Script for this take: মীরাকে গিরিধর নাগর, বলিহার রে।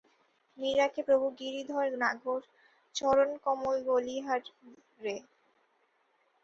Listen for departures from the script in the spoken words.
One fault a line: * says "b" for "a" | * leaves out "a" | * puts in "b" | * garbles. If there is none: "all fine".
* puts in "প্রভু"
* puts in "চরণকমল"